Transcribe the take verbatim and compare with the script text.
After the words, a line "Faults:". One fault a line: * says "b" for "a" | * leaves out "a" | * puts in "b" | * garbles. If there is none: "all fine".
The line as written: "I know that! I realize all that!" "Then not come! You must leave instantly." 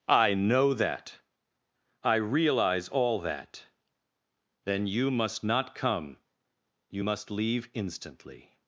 "I know that! I realize all that!" "Then you must not come! You must leave instantly."
Faults:
* puts in "you must"